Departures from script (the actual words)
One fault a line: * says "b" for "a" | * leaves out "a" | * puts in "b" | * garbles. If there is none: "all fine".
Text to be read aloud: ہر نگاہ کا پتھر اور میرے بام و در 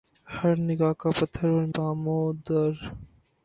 * leaves out "میرے"